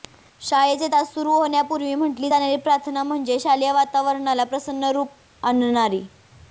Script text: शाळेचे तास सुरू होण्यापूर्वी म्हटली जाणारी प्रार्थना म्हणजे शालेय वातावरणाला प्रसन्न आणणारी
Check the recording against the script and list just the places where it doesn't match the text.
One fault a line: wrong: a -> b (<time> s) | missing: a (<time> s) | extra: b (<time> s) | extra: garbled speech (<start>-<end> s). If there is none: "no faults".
extra: रूप (4.9 s)